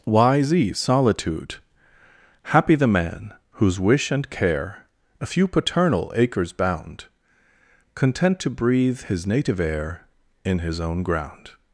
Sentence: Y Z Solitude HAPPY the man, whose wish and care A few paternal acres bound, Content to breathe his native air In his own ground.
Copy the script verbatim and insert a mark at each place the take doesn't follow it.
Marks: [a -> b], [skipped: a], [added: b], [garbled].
Y Z Solitude HAPPY the man, whose wish and care A few paternal acres bound, Content to breathe his native air In his own ground.